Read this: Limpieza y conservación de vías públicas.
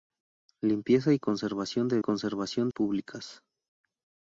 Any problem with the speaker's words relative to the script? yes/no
yes